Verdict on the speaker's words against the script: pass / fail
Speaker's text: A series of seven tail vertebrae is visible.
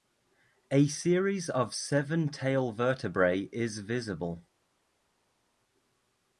pass